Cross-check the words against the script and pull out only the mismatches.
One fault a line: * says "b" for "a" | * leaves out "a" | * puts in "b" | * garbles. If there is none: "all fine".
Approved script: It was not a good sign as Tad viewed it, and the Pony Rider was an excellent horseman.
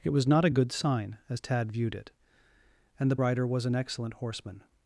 * leaves out "Pony"